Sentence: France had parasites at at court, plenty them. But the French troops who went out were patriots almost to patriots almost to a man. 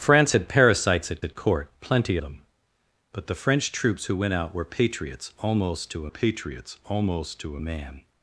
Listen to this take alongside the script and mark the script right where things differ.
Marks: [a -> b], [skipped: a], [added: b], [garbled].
France had parasites at at court, plenty them. But the French troops who went out were patriots almost to patriots almost to a man.